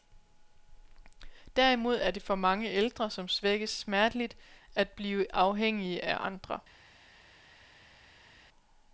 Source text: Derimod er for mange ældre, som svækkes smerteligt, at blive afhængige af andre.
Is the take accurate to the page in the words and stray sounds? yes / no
no